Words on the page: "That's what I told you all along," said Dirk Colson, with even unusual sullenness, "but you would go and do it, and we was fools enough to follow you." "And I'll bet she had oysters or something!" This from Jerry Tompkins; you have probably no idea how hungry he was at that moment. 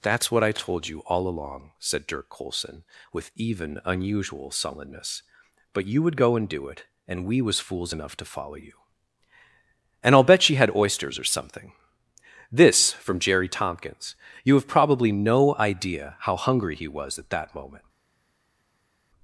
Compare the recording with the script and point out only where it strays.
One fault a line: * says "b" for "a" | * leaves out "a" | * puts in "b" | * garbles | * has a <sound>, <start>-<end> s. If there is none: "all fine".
all fine